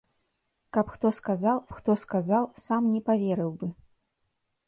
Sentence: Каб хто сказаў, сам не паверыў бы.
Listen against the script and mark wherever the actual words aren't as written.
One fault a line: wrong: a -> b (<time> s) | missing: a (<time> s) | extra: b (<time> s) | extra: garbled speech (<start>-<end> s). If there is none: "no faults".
extra: хто сказаў (1.8 s)